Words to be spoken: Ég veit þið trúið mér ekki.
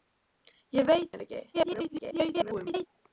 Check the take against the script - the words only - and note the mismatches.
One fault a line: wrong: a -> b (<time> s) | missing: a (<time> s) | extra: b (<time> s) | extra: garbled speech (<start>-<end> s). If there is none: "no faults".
missing: þið trúið (1.1 s)
extra: garbled speech (1.5-2.9 s)